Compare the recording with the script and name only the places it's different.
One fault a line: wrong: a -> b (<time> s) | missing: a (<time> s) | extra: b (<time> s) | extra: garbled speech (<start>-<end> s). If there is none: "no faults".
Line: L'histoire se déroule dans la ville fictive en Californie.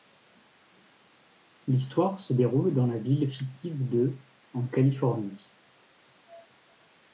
extra: de (3.9 s)